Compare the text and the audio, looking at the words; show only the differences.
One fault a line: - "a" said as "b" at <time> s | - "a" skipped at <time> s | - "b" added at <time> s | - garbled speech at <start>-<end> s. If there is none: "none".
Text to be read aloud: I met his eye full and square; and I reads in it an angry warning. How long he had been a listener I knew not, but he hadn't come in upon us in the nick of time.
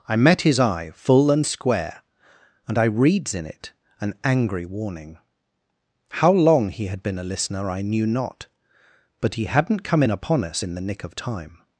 none